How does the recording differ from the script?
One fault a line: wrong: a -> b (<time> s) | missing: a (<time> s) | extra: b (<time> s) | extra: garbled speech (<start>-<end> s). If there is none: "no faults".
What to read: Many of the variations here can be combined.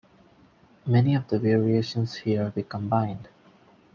missing: can (2.5 s)